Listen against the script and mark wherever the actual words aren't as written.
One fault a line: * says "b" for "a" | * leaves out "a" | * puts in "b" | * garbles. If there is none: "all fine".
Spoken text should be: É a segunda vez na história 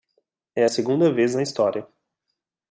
all fine